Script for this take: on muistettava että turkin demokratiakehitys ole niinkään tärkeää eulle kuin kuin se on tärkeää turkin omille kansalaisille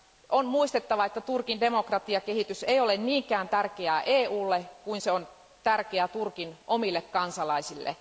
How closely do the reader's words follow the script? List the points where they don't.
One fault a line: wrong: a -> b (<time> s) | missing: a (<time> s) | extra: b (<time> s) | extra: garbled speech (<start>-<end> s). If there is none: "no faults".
extra: ei (2.6 s)
missing: kuin (5.0 s)